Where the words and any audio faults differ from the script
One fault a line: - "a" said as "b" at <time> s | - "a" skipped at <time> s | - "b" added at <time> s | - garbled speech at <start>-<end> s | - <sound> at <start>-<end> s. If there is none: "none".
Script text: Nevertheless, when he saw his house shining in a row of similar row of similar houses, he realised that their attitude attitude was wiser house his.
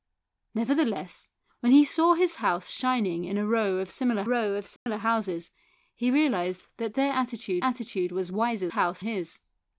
- dropout at 4.8-4.9 s